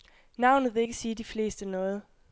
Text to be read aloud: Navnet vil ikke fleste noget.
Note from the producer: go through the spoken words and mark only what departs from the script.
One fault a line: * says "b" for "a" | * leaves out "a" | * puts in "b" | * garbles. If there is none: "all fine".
* puts in "sige de"